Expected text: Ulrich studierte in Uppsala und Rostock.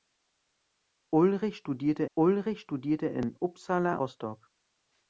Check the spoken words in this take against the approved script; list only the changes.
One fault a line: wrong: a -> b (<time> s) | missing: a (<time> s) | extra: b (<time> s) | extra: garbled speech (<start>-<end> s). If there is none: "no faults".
extra: ulrich studierte (2.2 s)
missing: und (4.0 s)